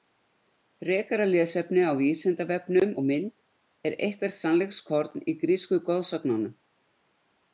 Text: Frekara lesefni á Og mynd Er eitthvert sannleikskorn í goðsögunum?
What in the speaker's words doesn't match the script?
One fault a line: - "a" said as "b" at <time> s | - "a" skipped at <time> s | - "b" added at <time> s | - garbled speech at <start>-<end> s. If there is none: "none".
- "Vísindavefnum" added at 2.0 s
- "grísku" added at 5.4 s